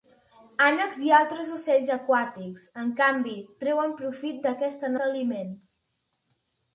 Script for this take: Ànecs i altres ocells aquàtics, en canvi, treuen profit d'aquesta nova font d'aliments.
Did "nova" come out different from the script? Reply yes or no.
yes